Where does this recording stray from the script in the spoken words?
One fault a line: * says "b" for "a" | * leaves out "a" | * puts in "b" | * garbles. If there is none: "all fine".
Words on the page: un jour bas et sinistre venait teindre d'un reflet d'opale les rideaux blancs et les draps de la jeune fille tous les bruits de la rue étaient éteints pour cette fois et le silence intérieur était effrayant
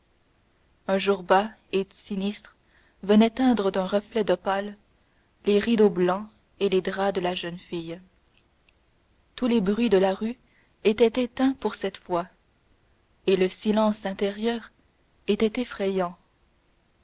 all fine